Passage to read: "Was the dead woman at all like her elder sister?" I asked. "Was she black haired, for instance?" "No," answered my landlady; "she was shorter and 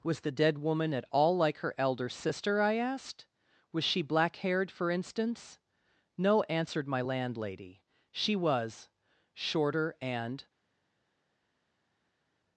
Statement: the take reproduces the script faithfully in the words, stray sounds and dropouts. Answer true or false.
true